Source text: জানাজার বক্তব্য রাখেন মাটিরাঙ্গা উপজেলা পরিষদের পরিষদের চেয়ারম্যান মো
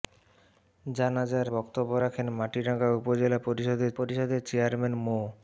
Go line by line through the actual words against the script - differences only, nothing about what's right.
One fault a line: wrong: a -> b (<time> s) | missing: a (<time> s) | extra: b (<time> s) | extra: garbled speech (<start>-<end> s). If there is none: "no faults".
no faults